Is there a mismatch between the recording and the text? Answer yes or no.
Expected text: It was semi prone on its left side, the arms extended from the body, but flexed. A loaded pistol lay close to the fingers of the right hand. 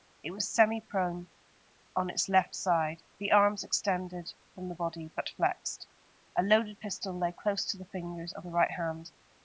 no